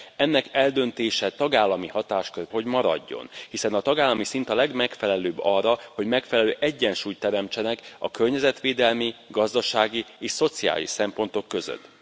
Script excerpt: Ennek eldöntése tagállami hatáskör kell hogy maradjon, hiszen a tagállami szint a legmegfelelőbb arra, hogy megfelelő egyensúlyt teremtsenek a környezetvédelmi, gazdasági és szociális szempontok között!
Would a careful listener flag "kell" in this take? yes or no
yes